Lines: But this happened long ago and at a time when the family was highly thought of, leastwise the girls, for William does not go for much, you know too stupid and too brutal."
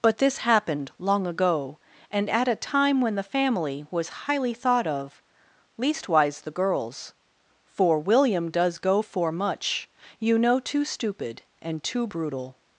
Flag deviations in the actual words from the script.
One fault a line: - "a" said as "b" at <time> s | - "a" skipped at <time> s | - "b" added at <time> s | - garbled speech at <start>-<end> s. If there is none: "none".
- "not" skipped at 8.8 s